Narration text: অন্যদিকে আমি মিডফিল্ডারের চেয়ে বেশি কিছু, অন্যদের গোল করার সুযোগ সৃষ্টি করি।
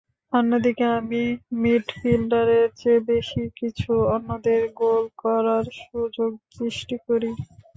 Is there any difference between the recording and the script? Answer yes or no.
no